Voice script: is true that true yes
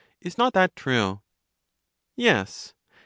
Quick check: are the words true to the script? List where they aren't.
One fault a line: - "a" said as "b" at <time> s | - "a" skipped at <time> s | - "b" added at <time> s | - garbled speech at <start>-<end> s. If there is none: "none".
- "true" said as "not" at 0.4 s